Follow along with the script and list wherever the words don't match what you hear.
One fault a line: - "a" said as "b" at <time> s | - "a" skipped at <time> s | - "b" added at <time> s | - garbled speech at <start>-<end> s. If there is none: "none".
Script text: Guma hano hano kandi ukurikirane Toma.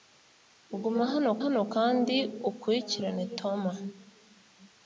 none